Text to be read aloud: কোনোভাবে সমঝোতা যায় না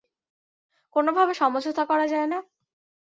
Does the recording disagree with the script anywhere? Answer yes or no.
yes